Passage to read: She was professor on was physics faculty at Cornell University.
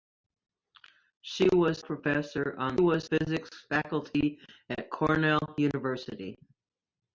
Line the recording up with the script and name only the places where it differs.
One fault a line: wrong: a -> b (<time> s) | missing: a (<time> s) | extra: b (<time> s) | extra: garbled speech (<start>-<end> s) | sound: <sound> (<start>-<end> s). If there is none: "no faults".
no faults